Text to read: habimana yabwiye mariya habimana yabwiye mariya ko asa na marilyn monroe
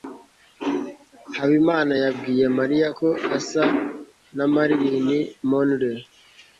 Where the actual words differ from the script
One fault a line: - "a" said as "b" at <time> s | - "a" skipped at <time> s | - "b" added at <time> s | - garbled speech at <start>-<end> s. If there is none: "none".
- "habimana yabwiye mariya" skipped at 2.9 s